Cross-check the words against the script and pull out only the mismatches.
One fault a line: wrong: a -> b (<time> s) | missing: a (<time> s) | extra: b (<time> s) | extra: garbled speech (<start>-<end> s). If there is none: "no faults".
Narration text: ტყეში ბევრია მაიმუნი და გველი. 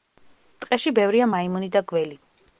no faults